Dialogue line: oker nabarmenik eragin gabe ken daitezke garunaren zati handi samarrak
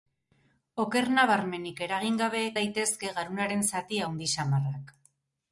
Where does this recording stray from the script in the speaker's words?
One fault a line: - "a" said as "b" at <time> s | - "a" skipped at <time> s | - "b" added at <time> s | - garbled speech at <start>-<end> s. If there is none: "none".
- "ken" skipped at 2.4 s